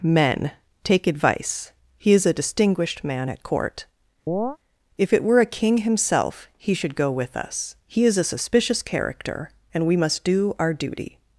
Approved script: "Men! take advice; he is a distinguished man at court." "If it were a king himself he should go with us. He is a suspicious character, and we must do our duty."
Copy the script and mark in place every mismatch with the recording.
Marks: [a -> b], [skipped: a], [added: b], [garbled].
"Men! take advice; he is a distinguished man at court." "If it were a king himself he should go with us. He is a suspicious character, and we must do our duty."